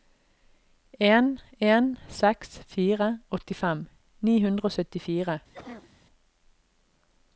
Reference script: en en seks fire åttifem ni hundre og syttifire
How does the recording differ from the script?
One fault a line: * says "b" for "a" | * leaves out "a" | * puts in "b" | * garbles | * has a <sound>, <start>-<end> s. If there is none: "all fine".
* has a cough, 5.5-5.9 s